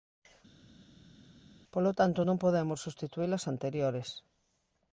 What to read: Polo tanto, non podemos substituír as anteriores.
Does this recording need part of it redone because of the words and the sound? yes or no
no